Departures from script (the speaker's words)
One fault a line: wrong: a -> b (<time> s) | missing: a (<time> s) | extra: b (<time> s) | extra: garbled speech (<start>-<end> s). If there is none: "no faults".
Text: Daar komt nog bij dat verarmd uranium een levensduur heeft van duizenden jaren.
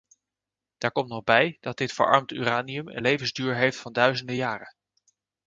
extra: dit (1.8 s)